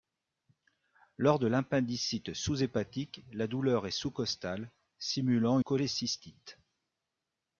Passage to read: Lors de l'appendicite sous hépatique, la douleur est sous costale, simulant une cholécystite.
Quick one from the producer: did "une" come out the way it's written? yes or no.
no